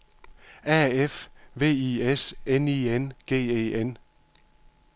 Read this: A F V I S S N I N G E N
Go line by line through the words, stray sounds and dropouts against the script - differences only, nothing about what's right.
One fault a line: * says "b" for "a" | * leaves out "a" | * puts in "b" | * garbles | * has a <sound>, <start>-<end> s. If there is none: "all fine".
* leaves out "S"